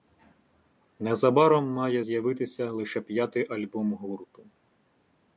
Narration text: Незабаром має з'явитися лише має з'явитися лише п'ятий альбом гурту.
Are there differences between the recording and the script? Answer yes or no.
yes